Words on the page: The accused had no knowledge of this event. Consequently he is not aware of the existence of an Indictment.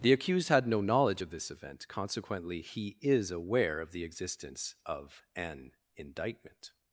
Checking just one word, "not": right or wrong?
wrong